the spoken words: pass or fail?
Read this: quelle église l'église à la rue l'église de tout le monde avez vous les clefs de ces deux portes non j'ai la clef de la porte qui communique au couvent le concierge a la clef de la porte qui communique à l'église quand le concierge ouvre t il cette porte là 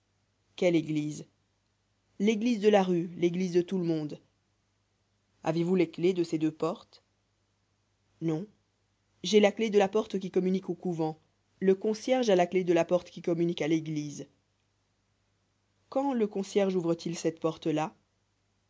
fail